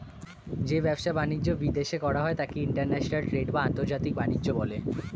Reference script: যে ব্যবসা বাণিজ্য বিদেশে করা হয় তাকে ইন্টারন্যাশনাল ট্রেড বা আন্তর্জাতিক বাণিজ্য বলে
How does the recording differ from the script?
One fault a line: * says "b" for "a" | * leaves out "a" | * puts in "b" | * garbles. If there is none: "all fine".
all fine